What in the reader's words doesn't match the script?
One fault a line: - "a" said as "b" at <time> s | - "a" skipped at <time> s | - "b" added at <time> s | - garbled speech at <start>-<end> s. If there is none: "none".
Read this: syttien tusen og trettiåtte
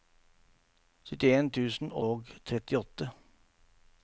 none